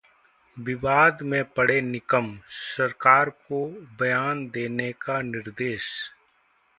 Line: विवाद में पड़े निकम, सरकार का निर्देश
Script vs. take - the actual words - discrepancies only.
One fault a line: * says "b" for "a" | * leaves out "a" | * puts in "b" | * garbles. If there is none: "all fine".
* puts in "को बयान देने"